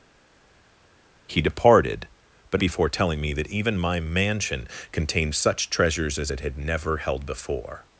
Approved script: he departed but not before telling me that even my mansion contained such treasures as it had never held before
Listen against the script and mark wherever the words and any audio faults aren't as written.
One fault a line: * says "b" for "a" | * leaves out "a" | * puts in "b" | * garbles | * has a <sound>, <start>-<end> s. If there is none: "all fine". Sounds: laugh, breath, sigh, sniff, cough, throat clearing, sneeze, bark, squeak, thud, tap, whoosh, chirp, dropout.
* leaves out "not"